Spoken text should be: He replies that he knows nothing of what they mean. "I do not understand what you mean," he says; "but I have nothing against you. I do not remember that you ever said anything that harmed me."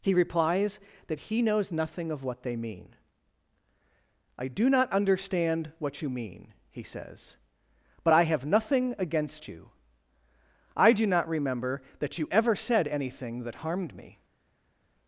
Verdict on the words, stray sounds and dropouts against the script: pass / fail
pass